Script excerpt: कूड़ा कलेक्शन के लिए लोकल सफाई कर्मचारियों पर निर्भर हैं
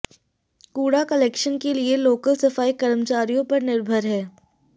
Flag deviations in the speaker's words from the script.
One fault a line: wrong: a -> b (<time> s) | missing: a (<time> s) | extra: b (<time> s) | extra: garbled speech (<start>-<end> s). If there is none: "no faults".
no faults